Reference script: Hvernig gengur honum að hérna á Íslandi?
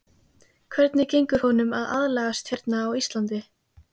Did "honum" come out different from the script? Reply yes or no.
no